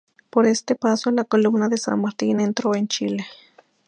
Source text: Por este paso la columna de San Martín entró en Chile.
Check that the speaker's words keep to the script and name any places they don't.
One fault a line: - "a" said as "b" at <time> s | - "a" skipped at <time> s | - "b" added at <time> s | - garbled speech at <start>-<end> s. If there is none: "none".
none